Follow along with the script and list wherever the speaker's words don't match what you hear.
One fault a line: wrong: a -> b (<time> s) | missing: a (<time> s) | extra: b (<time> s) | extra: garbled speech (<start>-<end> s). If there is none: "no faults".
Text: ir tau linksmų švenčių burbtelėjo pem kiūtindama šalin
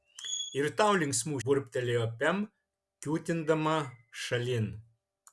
missing: švenčių (1.4 s)